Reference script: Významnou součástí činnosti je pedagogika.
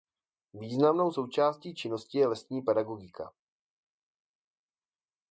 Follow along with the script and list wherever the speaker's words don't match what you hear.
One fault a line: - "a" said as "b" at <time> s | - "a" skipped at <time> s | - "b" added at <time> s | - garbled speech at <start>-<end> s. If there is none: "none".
- "lesní" added at 2.3 s